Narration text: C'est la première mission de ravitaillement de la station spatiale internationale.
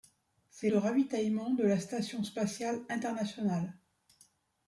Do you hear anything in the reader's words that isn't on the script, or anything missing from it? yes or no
yes